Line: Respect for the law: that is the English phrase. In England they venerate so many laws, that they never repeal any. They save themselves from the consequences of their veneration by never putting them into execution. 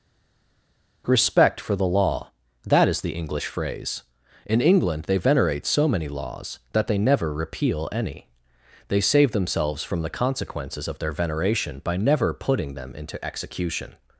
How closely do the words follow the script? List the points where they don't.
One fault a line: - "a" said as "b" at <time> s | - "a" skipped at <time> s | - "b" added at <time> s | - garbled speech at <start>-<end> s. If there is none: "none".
none